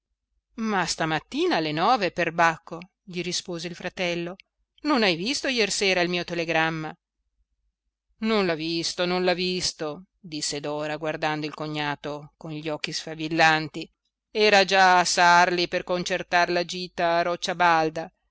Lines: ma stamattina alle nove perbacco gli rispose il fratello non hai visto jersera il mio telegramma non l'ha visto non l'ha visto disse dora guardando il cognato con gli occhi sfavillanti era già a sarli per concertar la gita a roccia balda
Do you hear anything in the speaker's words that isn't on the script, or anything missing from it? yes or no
no